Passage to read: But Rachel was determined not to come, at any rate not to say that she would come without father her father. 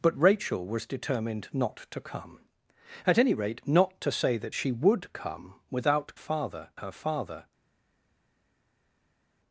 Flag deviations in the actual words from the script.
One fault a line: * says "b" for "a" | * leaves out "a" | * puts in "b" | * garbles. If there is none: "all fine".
all fine